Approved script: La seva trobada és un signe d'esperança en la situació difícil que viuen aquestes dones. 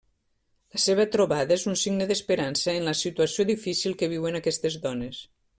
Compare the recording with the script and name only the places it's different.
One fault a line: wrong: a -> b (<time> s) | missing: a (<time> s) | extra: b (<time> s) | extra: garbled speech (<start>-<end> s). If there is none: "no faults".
no faults